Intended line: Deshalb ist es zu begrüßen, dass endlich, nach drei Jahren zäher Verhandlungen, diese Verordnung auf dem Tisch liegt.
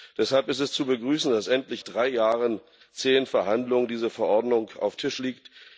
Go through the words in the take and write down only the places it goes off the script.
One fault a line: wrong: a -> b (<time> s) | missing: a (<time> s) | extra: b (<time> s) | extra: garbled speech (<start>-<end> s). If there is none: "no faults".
missing: nach (1.8 s)
missing: dem (5.0 s)